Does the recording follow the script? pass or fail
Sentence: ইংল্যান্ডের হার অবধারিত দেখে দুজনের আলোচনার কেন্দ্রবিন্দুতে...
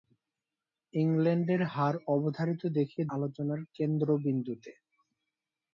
fail